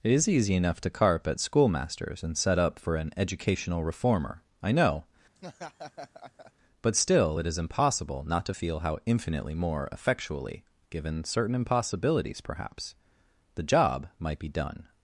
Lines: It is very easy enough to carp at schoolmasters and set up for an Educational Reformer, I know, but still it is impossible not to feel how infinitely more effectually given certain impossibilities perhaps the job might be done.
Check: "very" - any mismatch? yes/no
yes